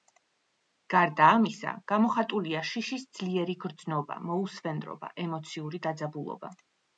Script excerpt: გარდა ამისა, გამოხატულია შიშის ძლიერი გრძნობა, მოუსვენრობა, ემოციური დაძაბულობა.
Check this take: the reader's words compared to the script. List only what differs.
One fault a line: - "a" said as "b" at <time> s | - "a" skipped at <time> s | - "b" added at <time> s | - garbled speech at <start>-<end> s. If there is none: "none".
none